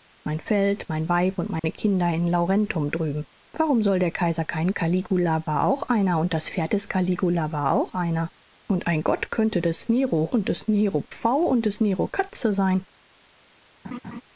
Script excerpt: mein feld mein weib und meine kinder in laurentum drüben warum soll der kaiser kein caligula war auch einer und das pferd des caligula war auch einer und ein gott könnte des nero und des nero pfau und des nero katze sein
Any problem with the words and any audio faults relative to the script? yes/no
yes